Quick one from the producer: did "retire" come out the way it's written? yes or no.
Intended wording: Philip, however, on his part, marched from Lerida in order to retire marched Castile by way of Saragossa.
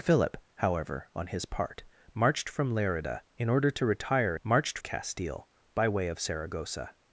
yes